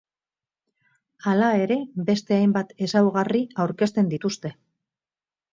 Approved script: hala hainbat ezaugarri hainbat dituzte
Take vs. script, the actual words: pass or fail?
fail